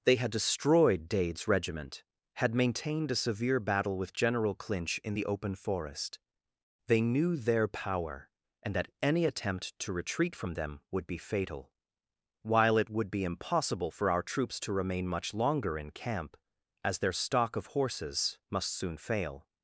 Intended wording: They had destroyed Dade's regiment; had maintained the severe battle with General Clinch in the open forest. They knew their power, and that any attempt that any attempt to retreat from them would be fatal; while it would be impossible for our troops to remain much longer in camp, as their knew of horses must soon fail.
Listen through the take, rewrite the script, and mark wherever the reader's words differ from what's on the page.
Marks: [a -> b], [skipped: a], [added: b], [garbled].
They had destroyed Dade's regiment; had maintained [the -> a] severe battle with General Clinch in the open forest. They knew their power, and that any attempt [skipped: that any attempt] to retreat from them would be fatal; while it would be impossible for our troops to remain much longer in camp, as their [knew -> stock] of horses must soon fail.